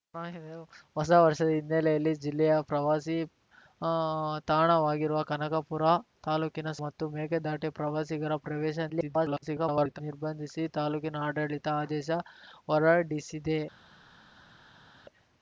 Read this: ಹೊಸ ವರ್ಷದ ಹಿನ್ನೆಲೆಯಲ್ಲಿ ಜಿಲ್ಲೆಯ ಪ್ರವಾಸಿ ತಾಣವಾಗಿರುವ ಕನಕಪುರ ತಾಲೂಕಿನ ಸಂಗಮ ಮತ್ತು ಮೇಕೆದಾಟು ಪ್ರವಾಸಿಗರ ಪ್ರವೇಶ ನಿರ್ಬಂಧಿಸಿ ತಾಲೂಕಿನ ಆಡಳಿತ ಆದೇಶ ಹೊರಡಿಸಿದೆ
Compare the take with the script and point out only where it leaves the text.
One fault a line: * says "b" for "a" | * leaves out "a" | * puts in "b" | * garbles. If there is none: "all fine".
* leaves out "ಸಂಗಮ"
* garbles